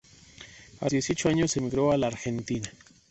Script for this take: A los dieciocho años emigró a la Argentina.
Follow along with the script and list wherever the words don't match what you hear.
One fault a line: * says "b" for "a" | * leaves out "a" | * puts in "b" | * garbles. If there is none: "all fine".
* leaves out "los"